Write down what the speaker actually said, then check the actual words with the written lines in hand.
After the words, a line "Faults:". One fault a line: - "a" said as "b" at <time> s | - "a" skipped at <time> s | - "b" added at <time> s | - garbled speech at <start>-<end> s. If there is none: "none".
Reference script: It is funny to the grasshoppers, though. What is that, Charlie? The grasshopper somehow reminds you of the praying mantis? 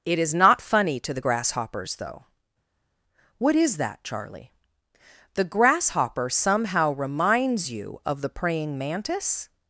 It is not funny to the grasshoppers, though. What is that, Charlie? The grasshopper somehow reminds you of the praying mantis?
Faults:
- "not" added at 0.3 s